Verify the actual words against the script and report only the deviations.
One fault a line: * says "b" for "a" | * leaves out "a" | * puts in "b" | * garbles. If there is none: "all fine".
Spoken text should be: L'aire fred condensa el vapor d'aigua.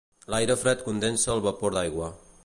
all fine